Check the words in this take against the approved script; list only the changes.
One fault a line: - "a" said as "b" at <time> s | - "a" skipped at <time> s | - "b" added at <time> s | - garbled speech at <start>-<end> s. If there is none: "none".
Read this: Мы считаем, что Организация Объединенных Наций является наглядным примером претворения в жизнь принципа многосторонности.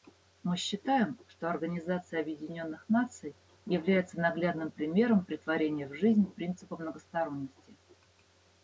none